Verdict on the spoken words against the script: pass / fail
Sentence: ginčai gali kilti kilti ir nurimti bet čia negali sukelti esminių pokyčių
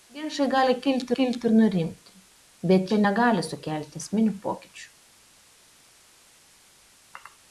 pass